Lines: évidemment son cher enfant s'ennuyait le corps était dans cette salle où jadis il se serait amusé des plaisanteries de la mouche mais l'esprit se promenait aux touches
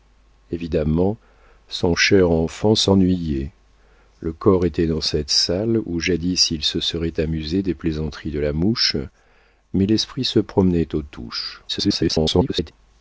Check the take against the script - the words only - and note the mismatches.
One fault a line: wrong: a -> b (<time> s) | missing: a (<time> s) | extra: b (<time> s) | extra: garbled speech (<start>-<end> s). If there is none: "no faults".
extra: garbled speech (11.7-12.7 s)